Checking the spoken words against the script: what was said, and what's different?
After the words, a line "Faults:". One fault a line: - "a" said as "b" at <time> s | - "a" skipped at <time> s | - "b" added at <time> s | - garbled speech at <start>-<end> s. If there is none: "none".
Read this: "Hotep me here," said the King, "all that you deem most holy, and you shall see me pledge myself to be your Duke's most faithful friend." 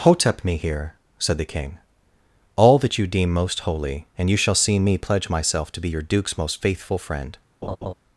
"Hotep me here," said the King, "all that you deem most holy, and you shall see me pledge myself to be your Duke's most faithful friend."
Faults:
none